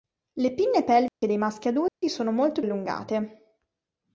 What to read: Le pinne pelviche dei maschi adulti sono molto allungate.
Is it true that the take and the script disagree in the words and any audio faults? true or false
true